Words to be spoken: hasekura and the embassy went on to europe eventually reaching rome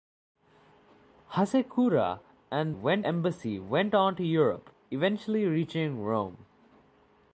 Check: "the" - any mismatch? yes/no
yes